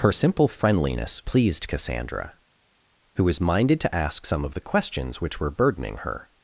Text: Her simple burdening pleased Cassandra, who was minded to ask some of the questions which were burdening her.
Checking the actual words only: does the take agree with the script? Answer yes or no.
no